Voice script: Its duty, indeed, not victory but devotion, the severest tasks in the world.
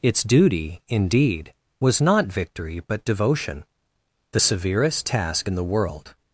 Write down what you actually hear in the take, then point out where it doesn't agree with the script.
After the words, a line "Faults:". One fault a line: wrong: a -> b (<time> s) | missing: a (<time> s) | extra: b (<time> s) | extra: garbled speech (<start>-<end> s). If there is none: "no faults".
Its duty, indeed, was not victory but devotion, the severest task in the world.
Faults:
extra: was (1.8 s)
wrong: tasks -> task (5.1 s)